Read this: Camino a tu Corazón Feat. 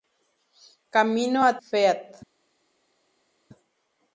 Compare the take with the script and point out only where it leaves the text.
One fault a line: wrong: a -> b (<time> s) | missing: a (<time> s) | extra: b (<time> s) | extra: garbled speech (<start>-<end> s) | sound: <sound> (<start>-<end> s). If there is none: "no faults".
missing: tu Corazón (1.6 s)